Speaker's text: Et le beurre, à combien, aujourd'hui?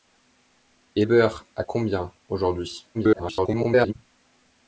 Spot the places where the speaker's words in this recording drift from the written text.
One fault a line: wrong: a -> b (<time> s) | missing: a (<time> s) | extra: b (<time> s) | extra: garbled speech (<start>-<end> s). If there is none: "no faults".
missing: le (1.1 s)
extra: garbled speech (2.9-3.9 s)